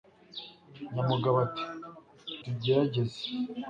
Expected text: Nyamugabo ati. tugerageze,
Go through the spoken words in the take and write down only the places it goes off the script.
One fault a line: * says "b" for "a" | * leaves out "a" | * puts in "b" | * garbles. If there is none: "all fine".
all fine